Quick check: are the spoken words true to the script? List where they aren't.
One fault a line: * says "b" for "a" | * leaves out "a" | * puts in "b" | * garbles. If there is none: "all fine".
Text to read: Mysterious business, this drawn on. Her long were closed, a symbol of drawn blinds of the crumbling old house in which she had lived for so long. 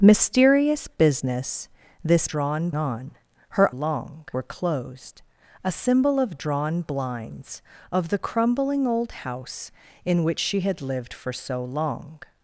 all fine